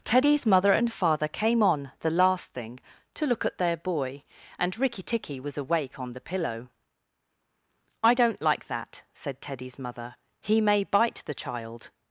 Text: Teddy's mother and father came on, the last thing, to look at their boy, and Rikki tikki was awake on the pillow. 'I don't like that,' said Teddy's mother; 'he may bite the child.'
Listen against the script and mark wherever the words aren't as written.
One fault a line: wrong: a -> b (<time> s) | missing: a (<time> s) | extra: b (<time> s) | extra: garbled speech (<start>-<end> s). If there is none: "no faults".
no faults